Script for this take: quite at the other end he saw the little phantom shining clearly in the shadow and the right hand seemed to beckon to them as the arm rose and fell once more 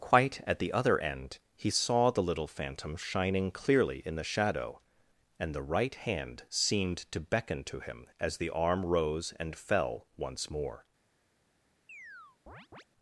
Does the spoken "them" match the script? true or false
false